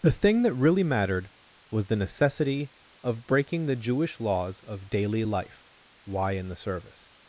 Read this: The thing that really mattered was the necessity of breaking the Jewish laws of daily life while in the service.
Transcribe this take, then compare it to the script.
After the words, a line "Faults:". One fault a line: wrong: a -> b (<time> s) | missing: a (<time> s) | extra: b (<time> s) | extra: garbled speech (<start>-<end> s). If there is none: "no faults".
The thing that really mattered was the necessity of breaking the Jewish laws of daily life why in the service.
Faults:
wrong: while -> why (6.1 s)